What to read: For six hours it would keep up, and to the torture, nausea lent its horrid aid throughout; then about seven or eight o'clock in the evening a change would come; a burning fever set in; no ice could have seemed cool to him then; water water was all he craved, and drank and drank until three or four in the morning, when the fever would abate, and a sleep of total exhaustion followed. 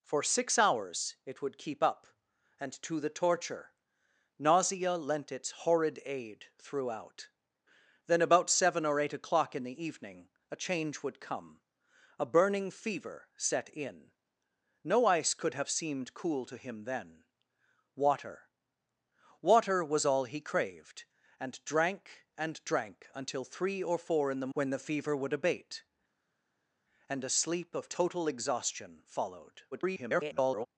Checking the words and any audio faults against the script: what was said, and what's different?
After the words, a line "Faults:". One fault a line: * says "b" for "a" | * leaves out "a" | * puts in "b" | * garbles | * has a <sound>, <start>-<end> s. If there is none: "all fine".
For six hours it would keep up, and to the torture, nausea lent its horrid aid throughout; then about seven or eight o'clock in the evening a change would come; a burning fever set in; no ice could have seemed cool to him then; water water was all he craved, and drank and drank until three or four in the when the fever would abate, and a sleep of total exhaustion followed. [garbled]
Faults:
* leaves out "morning"
* garbles